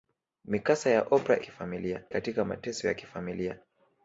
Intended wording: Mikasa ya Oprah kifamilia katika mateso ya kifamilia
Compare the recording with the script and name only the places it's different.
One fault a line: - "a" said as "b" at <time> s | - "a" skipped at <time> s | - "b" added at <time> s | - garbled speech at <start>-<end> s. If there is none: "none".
none